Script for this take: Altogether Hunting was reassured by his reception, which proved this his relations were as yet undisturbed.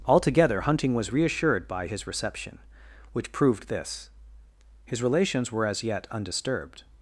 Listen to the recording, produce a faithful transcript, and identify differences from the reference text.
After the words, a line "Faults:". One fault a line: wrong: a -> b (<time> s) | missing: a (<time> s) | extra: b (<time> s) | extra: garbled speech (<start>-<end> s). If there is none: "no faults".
Altogether Hunting was reassured by his reception, which proved this his relations were as yet undisturbed.
Faults:
no faults